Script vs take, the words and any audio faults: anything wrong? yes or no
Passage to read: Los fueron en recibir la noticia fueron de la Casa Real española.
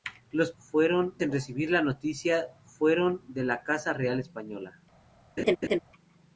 yes